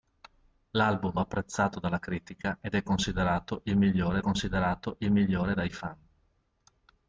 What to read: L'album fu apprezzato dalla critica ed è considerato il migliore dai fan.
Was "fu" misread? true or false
true